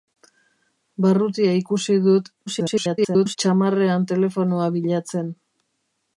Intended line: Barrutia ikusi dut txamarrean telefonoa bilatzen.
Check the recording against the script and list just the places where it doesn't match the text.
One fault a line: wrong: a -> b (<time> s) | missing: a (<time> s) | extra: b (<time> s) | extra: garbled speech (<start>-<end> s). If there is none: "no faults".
extra: garbled speech (2.5-3.4 s)